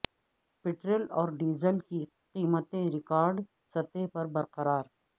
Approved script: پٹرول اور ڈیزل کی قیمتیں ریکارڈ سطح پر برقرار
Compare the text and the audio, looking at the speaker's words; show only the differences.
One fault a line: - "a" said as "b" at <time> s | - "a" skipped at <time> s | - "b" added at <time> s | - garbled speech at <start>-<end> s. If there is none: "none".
none